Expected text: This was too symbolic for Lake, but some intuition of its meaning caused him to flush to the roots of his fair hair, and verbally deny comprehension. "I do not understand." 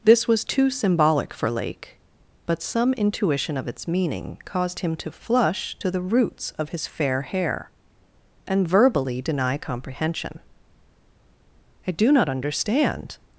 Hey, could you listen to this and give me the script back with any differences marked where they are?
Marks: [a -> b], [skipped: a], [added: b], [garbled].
This was too symbolic for Lake, but some intuition of its meaning caused him to flush to the roots of his fair hair, and verbally deny comprehension. "I do not understand."